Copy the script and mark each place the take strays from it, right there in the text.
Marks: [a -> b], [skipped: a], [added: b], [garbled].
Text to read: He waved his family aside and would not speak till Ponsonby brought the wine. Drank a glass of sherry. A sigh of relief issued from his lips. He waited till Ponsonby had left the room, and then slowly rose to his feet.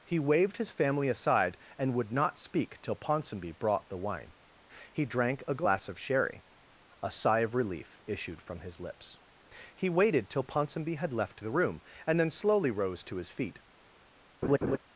He waved his family aside and would not speak till Ponsonby brought the wine. [added: He] Drank a glass of sherry. A sigh of relief issued from his lips. He waited till Ponsonby had left the room, and then slowly rose to his feet.